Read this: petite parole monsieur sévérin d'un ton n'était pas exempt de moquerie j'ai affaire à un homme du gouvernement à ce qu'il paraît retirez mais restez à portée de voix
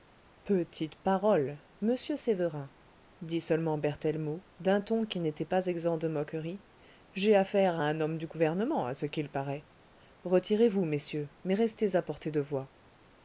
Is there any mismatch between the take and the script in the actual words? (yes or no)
yes